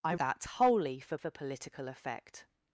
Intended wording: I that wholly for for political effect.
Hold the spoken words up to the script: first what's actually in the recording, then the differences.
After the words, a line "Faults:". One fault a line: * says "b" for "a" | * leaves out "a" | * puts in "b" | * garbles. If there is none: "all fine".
I that wholly for for political effect.
Faults:
all fine